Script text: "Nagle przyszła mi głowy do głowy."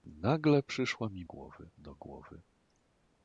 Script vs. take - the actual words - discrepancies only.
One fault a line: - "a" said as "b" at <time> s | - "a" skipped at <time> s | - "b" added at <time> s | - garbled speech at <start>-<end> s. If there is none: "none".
none